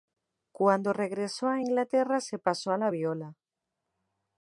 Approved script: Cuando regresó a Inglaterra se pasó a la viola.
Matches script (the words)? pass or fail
pass